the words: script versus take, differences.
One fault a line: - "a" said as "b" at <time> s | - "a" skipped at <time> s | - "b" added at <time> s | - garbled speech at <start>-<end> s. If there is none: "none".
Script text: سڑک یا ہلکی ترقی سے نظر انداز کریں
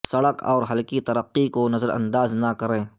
- "یا" said as "اور" at 0.4 s
- "سے" said as "کو" at 1.5 s
- "نہ" added at 2.3 s